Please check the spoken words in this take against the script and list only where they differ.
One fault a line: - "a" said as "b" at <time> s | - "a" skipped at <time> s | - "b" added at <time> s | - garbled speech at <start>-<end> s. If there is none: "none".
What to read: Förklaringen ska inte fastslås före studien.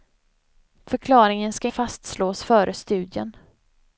- "inte" skipped at 1.7 s